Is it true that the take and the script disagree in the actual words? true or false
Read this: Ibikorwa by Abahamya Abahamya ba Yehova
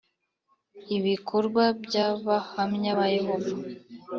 true